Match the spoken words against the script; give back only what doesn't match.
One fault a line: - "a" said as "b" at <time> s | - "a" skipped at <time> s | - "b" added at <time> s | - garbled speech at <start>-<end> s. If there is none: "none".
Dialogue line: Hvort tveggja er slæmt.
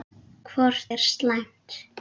- "tveggja" skipped at 0.8 s